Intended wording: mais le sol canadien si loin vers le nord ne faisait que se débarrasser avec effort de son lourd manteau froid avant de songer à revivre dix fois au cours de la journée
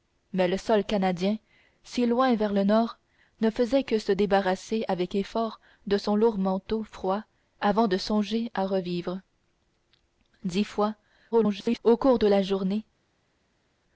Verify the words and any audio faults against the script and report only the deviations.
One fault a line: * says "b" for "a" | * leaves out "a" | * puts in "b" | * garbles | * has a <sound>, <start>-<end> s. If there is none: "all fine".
* garbles